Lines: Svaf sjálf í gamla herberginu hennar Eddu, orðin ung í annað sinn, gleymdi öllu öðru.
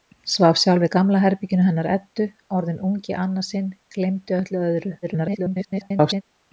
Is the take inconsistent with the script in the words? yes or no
yes